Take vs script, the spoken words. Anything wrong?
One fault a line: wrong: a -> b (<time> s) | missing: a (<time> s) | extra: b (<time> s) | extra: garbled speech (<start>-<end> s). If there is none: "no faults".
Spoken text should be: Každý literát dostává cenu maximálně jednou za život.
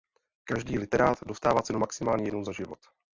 no faults